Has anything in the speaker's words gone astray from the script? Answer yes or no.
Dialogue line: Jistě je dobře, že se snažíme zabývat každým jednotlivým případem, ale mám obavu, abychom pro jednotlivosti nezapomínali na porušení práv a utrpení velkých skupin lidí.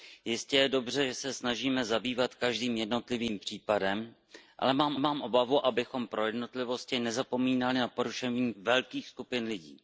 yes